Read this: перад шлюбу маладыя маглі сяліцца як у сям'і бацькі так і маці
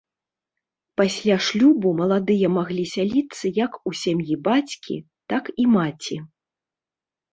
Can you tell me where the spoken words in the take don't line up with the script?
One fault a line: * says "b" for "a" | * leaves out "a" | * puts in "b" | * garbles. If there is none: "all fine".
* says "пасля" for "перад"